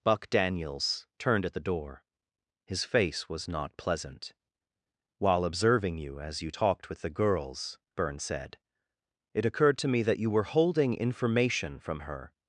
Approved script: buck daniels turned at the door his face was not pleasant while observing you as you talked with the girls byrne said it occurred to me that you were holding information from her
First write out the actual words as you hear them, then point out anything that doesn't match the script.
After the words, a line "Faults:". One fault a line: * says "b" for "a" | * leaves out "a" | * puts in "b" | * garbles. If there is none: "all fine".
buck daniels turned at the door his face was not pleasant while observing you as you talked with the girls byrne said it occurred to me that you were holding information from her
Faults:
all fine